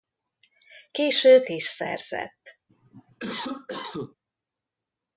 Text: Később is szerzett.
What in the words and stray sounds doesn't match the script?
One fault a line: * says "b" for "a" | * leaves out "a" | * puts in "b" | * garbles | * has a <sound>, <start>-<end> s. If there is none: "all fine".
* has a cough, 2.7-4.2 s